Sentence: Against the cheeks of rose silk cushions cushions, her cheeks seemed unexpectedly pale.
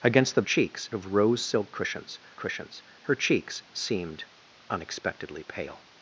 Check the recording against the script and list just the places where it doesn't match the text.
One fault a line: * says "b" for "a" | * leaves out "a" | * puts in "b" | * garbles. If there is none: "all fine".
all fine